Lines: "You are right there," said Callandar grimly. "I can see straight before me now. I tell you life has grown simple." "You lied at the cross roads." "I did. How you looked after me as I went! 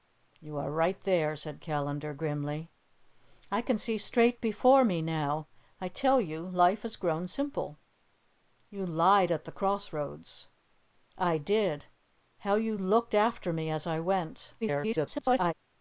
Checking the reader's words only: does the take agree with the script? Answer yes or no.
no